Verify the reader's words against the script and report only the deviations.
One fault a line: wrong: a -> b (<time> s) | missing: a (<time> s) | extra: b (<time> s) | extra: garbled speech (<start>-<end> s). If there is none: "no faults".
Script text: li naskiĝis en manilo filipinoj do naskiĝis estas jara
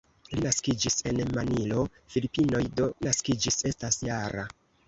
no faults